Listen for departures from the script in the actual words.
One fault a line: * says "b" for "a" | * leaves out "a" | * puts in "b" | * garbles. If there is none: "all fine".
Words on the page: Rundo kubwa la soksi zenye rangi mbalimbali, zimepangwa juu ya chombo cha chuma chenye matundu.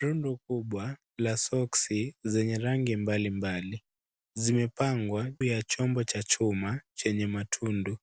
* leaves out "juu"